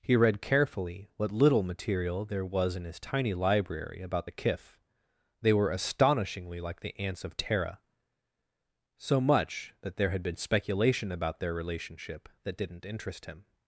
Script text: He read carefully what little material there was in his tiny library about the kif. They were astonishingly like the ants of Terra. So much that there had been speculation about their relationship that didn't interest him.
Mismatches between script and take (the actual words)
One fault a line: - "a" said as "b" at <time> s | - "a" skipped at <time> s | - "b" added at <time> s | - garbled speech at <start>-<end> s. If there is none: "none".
none